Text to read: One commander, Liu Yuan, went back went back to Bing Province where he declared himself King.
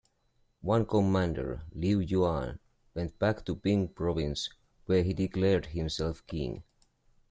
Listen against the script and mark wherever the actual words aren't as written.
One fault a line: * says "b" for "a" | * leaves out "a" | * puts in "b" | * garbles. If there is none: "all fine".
* leaves out "went back"